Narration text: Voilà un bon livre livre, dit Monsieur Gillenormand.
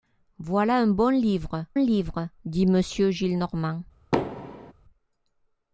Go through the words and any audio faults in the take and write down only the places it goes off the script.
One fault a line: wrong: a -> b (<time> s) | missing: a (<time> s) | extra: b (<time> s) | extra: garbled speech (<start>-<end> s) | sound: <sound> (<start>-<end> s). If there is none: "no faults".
sound: thud (4.1-4.7 s)